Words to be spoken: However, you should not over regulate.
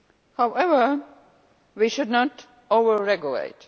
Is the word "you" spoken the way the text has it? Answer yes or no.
no